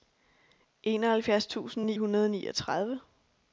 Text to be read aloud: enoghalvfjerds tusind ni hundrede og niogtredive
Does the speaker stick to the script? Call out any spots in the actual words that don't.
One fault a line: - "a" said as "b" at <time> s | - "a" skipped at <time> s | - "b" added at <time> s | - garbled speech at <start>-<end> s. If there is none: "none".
none